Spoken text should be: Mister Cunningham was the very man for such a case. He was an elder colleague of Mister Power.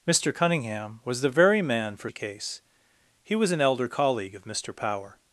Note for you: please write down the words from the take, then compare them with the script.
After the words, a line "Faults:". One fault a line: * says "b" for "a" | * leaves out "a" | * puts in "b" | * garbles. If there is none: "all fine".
Mister Cunningham was the very man for a case. He was an elder colleague of Mister Power.
Faults:
* leaves out "such"